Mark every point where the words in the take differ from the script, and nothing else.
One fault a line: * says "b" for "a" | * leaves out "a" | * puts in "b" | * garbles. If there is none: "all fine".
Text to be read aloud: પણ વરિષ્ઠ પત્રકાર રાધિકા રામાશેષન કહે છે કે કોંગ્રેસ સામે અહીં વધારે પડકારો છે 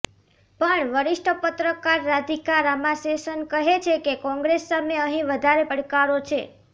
all fine